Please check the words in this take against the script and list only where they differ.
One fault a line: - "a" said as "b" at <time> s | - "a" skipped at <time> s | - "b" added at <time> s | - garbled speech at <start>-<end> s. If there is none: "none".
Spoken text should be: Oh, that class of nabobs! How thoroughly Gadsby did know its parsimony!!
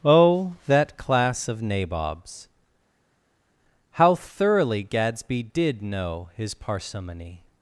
- "its" said as "his" at 6.3 s